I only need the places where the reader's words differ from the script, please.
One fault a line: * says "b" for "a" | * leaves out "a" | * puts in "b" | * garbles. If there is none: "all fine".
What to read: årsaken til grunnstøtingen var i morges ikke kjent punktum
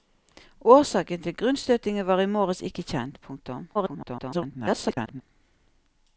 * garbles